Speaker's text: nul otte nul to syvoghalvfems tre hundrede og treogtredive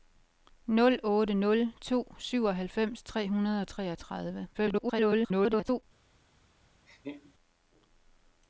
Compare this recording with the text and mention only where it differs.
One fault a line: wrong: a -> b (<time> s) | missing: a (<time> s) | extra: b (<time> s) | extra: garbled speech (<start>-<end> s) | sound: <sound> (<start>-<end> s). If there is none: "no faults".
extra: garbled speech (4.5-5.8 s)
sound: laugh (6.9-7.3 s)